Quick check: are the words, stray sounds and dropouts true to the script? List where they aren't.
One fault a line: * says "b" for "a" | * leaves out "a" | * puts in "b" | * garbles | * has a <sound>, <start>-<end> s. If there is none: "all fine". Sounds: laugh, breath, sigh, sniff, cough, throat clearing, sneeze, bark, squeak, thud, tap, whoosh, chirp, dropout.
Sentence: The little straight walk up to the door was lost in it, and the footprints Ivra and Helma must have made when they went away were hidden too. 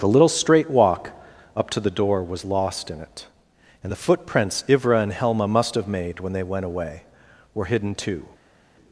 all fine